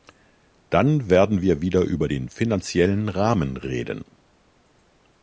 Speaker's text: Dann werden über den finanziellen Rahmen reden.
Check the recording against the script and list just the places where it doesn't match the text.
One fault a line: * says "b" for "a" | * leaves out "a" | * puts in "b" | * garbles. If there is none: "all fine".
* puts in "wir wieder"